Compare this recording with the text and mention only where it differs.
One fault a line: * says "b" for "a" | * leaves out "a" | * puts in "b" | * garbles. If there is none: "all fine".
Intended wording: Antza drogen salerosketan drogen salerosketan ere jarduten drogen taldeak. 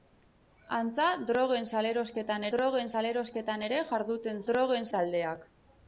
all fine